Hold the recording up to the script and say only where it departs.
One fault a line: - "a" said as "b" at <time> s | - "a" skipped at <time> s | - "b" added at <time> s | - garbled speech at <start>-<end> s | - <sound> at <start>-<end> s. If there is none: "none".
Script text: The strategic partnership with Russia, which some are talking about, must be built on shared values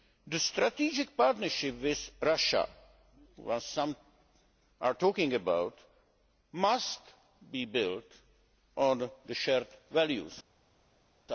none